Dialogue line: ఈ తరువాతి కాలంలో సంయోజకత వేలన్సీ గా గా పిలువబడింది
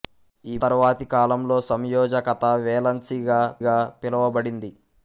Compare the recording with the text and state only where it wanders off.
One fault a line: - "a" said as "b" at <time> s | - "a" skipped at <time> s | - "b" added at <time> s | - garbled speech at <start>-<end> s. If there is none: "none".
none